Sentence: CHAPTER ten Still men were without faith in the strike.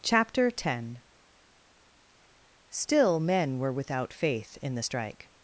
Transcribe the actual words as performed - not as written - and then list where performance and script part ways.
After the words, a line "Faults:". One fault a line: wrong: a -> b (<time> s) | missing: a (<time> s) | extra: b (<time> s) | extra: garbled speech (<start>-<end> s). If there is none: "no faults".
CHAPTER ten Still men were without faith in the strike.
Faults:
no faults